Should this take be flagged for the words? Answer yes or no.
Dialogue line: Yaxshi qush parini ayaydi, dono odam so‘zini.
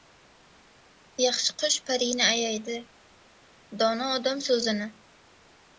no